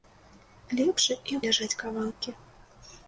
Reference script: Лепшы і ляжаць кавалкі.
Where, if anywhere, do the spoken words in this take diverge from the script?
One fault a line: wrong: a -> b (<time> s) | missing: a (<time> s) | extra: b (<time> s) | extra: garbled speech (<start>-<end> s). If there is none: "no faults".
no faults